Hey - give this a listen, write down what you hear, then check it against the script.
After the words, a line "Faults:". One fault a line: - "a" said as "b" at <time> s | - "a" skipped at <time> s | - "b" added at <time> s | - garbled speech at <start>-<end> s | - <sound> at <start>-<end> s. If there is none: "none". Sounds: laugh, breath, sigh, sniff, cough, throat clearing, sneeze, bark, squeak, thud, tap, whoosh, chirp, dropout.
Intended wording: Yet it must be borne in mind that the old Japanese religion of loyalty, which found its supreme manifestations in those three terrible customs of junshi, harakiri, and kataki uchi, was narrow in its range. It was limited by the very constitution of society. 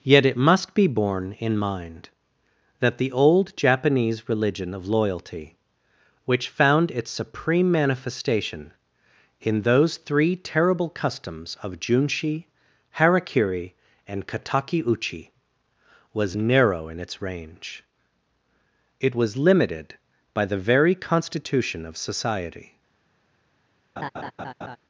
Yet it must be borne in mind that the old Japanese religion of loyalty, which found its supreme manifestation in those three terrible customs of junshi, harakiri, and kataki uchi, was narrow in its range. It was limited by the very constitution of society.
Faults:
- "manifestations" said as "manifestation" at 7.7 s
- laugh at 24.0-24.8 s